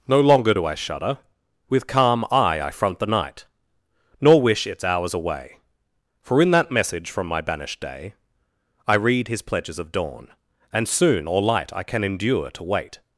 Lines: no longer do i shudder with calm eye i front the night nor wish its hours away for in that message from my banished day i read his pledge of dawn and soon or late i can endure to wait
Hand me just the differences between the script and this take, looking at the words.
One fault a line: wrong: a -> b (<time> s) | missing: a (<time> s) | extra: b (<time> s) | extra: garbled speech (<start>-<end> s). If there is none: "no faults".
wrong: pledge -> pledges (9.4 s)
wrong: late -> light (11.4 s)